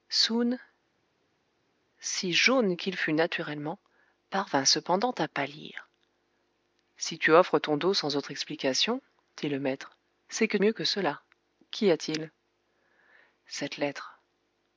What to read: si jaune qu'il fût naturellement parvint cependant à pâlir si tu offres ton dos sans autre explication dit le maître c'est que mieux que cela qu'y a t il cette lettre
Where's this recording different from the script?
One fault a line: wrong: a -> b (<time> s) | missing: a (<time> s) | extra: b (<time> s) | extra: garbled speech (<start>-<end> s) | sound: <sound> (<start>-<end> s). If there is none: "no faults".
no faults